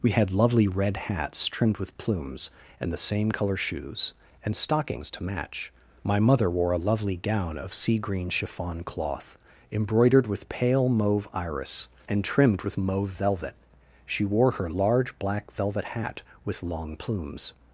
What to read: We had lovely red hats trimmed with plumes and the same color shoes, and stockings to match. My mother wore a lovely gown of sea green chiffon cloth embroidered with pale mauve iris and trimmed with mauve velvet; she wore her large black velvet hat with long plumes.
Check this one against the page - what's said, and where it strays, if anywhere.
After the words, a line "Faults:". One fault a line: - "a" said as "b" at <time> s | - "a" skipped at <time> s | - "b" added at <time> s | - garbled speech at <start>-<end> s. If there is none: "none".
We had lovely red hats trimmed with plumes and the same color shoes, and stockings to match. My mother wore a lovely gown of sea green chiffon cloth embroidered with pale mauve iris and trimmed with mauve velvet; she wore her large black velvet hat with long plumes.
Faults:
none